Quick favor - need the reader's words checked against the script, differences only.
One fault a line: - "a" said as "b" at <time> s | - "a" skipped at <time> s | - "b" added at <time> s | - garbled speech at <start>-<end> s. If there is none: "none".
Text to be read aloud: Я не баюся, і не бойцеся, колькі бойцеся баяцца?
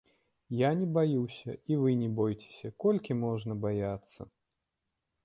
- "вы" added at 1.8 s
- "бойцеся" said as "можна" at 3.2 s